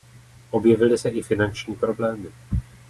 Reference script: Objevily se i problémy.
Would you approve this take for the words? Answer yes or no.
no